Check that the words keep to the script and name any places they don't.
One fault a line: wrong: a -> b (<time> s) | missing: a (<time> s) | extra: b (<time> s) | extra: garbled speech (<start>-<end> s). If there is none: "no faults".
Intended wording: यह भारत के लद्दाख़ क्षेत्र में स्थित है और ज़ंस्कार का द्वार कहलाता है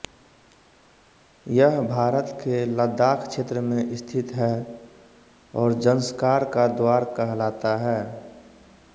no faults